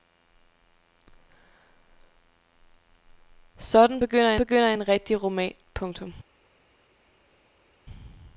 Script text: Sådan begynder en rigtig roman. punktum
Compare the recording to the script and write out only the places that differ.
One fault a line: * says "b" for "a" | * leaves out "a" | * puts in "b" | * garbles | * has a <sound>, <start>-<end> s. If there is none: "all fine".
* puts in "begynder"